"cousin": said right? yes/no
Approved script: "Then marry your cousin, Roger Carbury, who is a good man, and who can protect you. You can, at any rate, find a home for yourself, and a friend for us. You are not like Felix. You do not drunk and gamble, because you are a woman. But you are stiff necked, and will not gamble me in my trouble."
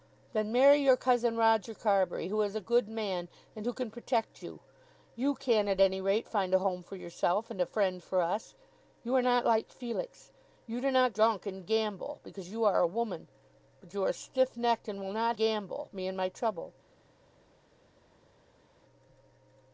yes